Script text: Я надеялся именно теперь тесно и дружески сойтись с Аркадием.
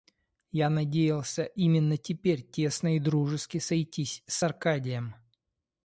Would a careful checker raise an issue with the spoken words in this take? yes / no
no